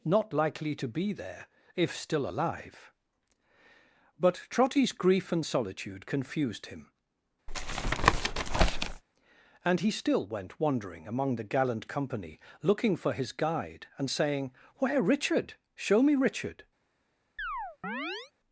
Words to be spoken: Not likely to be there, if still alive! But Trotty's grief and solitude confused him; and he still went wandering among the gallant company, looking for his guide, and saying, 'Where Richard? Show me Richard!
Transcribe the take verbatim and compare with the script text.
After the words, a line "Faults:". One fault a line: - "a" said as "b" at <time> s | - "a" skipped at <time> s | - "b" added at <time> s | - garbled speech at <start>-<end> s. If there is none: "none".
Not likely to be there, if still alive! But Trotty's grief and solitude confused him; and he still went wandering among the gallant company, looking for his guide, and saying, 'Where Richard? Show me Richard!
Faults:
none